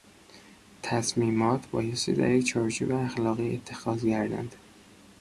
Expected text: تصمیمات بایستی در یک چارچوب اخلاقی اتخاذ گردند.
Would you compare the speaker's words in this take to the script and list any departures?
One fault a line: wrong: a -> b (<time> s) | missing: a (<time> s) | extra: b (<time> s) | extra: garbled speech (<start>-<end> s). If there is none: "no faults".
no faults